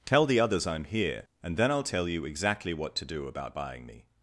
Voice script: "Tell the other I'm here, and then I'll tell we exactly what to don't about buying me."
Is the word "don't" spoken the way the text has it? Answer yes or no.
no